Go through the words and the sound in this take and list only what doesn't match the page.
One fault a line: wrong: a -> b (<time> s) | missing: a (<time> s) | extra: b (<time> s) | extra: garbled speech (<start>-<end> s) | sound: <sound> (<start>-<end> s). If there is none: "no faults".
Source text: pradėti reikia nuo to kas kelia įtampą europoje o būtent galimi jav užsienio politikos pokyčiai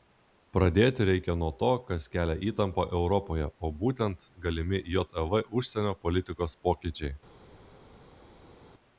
no faults